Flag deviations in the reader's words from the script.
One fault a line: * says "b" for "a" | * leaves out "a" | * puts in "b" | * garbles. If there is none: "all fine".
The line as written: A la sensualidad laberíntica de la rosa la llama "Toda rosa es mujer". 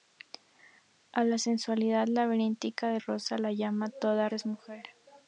* leaves out "la"
* leaves out "rosa"